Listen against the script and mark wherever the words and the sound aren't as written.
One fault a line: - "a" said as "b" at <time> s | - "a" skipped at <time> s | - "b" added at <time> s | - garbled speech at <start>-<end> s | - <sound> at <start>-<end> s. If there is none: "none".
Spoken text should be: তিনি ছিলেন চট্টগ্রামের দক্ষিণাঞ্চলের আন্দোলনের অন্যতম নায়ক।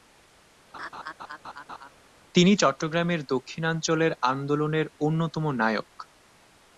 - laugh at 0.7-1.9 s
- "ছিলেন" skipped at 2.5 s